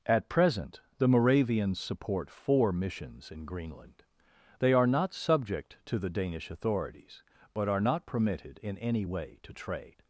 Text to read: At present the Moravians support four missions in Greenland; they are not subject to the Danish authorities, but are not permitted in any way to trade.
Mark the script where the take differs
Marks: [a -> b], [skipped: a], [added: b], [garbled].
At present the Moravians support four missions in Greenland; they are not subject to the Danish authorities, but are not permitted in any way to trade.